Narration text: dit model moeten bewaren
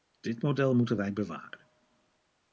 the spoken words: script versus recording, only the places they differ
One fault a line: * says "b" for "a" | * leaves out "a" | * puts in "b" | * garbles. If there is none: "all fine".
* puts in "wij"